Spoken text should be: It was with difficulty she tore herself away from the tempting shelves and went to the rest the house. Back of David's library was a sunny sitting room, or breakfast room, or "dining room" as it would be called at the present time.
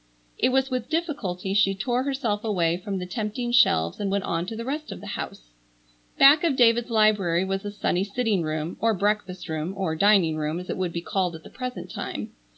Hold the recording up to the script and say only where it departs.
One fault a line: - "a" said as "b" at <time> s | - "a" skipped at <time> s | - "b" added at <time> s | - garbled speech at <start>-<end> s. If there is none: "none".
- "on" added at 4.2 s
- "of" added at 4.9 s